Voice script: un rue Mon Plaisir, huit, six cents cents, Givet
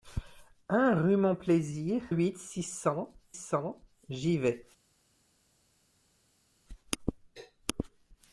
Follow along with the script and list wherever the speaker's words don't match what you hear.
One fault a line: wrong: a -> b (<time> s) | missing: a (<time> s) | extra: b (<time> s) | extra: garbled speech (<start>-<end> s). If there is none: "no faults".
no faults